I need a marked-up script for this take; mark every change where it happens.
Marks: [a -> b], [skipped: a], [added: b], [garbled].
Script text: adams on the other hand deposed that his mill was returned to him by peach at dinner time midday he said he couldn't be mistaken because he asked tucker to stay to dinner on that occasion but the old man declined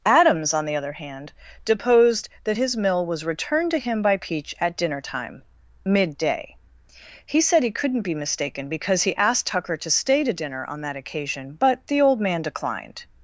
adams on the other hand deposed that his mill was returned to him by peach at dinner time midday he said he couldn't be mistaken because he asked tucker to stay to dinner on that occasion but the old man declined